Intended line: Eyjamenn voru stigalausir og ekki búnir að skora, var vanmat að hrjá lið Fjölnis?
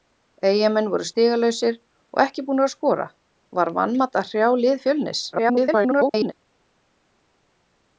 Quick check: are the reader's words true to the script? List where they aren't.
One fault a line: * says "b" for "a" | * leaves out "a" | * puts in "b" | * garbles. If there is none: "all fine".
* garbles